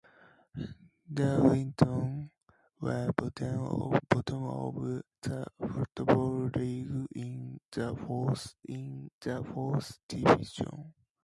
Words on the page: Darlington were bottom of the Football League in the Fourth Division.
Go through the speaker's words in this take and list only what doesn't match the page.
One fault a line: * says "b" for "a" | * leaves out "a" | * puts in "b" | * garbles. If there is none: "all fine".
* puts in "in the Fourth"